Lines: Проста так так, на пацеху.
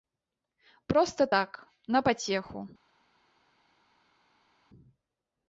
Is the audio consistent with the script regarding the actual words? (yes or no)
no